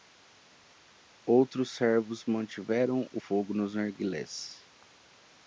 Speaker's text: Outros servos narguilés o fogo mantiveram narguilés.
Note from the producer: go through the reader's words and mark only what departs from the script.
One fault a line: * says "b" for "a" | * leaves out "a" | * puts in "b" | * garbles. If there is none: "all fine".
* says "mantiveram" for "narguilés"
* says "nos" for "mantiveram"